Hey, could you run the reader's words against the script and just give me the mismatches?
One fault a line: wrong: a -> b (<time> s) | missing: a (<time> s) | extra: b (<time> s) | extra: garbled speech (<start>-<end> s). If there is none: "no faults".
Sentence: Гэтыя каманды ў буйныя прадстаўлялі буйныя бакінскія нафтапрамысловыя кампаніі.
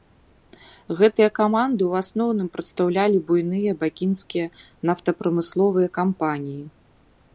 wrong: буйныя -> асноўным (2.0 s)